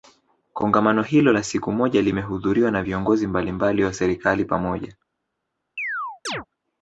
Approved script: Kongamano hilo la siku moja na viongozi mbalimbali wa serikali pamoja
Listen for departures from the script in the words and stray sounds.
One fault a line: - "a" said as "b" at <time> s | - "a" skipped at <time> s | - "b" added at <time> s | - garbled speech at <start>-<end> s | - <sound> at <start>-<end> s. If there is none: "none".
- "limehudhuriwa" added at 2.0 s
- chirp at 5.8-6.5 s